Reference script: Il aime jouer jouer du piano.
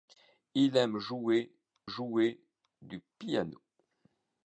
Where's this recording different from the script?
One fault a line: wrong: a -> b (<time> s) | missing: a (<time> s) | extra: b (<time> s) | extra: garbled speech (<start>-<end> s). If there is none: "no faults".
no faults